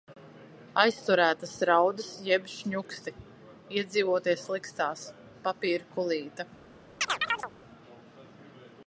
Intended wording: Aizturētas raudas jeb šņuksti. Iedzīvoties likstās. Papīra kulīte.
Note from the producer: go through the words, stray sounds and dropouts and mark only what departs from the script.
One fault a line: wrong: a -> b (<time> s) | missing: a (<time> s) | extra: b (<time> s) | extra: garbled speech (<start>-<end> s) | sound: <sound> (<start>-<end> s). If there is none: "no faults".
sound: chirp (7.0-7.5 s)